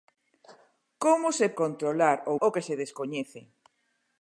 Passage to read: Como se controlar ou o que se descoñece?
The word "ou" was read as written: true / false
true